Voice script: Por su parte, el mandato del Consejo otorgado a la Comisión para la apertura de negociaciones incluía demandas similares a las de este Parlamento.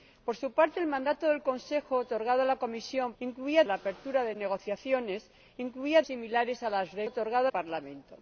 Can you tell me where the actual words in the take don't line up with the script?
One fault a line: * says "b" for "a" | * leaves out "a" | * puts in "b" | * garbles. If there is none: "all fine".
* says "incluía" for "para"
* leaves out "demandas"
* says "otorgado" for "este"